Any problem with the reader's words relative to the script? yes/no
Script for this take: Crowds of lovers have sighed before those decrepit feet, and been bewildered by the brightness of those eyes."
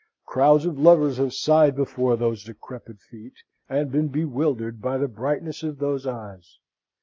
no